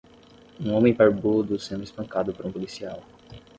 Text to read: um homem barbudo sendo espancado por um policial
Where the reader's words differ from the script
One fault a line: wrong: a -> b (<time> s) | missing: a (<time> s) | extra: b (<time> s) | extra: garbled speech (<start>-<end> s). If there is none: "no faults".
no faults